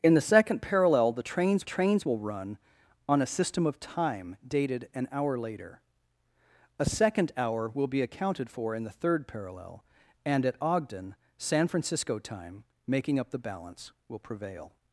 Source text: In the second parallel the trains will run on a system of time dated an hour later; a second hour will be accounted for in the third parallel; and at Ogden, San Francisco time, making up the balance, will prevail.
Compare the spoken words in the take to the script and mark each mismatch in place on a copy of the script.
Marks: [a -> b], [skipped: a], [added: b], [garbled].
In the second parallel the trains [added: trains] will run on a system of time dated an hour later; a second hour will be accounted for in the third parallel; and at Ogden, San Francisco time, making up the balance, will prevail.